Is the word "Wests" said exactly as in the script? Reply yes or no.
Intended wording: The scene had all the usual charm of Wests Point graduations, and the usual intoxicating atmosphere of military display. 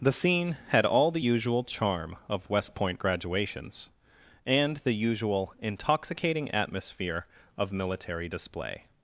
no